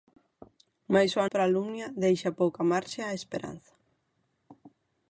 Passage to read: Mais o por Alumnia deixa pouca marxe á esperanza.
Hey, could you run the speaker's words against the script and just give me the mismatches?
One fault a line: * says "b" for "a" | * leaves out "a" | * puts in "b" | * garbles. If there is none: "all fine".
all fine